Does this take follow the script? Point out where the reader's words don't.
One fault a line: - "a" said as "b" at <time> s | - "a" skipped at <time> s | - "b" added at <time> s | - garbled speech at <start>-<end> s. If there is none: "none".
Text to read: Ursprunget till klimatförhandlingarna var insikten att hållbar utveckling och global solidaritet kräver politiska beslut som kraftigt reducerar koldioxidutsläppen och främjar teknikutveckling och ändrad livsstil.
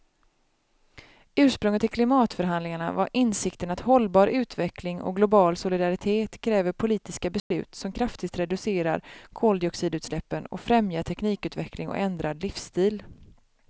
none